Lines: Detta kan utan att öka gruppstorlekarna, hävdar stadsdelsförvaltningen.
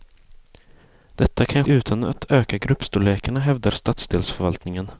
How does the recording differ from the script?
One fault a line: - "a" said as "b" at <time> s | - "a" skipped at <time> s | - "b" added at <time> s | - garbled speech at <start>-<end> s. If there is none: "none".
none